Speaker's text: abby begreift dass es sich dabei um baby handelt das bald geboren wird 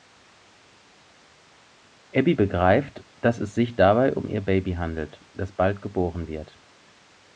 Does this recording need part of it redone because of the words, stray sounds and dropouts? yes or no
yes